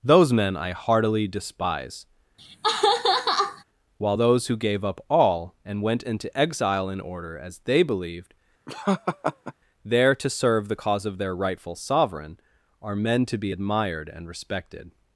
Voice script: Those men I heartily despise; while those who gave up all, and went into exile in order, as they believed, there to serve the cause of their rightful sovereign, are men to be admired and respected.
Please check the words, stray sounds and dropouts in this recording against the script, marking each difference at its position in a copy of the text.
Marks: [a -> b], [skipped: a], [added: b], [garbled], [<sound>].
Those men I heartily despise; [laugh] while those who gave up all, and went into exile in order, as they believed, [laugh] there to serve the cause of their rightful sovereign, are men to be admired and respected.